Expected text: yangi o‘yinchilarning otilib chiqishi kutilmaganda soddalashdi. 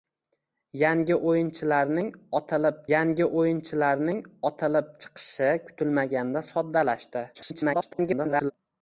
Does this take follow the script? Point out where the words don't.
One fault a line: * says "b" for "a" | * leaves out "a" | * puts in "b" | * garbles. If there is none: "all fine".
* puts in "yangi o‘yinchilarning otilib"
* garbles